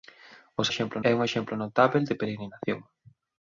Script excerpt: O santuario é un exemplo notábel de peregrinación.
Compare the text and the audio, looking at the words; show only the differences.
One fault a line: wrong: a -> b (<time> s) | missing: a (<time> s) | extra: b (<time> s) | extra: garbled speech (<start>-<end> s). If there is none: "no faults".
wrong: santuario -> exemplo (0.7 s)